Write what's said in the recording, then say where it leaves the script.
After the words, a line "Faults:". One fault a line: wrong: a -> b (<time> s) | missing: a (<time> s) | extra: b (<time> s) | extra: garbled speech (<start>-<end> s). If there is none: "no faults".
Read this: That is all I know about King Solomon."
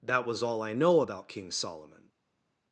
That was all I know about King Solomon."
Faults:
wrong: is -> was (0.2 s)